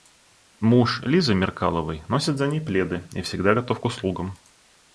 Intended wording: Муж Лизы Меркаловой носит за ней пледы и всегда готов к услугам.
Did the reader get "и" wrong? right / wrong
right